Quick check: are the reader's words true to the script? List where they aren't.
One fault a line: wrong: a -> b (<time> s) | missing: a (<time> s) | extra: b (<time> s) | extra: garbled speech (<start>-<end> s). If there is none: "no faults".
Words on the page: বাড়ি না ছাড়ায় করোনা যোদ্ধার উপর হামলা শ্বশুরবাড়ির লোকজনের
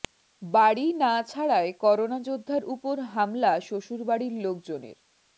no faults